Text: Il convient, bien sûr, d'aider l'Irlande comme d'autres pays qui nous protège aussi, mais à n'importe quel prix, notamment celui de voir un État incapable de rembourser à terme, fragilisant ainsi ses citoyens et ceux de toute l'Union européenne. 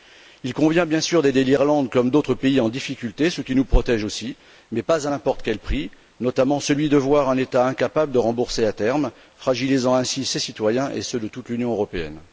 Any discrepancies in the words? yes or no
yes